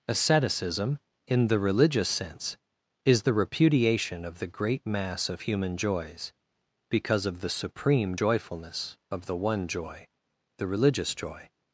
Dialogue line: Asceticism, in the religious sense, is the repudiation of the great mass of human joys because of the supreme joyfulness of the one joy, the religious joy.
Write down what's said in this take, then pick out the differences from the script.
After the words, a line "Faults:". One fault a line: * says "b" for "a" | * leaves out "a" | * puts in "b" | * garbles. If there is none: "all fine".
Asceticism, in the religious sense, is the repudiation of the great mass of human joys because of the supreme joyfulness of the one joy, the religious joy.
Faults:
all fine